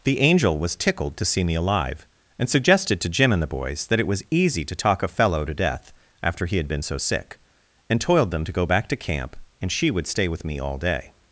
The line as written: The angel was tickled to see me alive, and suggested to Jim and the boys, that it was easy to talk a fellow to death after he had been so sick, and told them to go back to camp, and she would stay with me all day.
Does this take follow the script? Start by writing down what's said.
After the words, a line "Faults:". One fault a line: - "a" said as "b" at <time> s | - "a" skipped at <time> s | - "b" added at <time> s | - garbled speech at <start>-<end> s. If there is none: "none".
The angel was tickled to see me alive, and suggested to Jim and the boys, that it was easy to talk a fellow to death after he had been so sick, and toiled them to go back to camp, and she would stay with me all day.
Faults:
- "told" said as "toiled" at 8.0 s